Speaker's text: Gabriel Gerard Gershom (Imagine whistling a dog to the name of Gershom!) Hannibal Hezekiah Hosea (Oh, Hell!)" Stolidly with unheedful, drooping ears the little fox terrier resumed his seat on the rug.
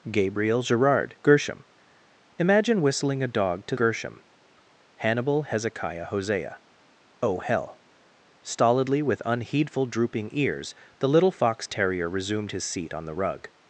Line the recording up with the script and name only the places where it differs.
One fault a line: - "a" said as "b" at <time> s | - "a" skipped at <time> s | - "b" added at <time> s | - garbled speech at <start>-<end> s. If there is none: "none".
- "the name of" skipped at 3.8 s